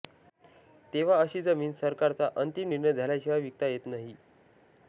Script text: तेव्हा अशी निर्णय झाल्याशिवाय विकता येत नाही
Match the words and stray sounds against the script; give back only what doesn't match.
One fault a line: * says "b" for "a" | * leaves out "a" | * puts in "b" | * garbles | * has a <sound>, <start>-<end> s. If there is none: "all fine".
* puts in "जमीन सरकारचा अंतिम"